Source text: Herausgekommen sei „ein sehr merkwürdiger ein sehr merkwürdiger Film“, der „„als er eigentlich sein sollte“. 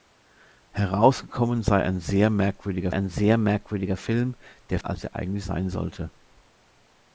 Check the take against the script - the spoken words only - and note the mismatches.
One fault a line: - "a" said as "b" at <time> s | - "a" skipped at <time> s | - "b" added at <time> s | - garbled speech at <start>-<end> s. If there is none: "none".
none